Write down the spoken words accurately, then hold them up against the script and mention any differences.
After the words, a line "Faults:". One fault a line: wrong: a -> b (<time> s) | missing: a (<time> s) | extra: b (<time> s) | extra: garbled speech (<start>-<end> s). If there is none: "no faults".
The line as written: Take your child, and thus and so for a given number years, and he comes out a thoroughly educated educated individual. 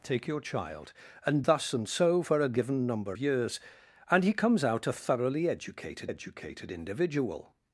Take your child, and thus and so for a given number years, and he comes out a thoroughly educated educated individual.
Faults:
no faults